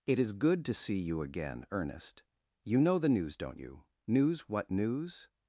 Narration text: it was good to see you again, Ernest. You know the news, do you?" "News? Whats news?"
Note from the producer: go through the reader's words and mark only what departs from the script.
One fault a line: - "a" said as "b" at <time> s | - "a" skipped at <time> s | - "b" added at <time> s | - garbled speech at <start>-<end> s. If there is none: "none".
- "was" said as "is" at 0.2 s
- "do" said as "don't" at 3.4 s
- "Whats" said as "What" at 4.5 s